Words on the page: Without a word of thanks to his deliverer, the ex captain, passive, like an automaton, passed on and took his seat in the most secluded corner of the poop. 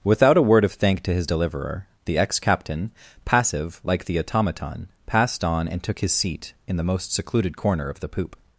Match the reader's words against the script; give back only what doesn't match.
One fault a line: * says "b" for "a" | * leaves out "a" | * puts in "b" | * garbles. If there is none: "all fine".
* says "thank" for "thanks"
* says "the" for "an"